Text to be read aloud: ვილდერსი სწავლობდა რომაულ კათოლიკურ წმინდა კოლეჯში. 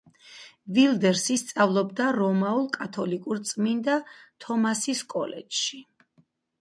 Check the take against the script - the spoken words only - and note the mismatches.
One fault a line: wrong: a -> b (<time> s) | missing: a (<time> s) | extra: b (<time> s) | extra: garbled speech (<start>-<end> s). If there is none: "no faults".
extra: თომასის (4.5 s)